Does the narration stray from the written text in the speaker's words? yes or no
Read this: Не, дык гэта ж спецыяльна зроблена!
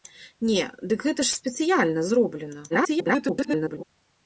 yes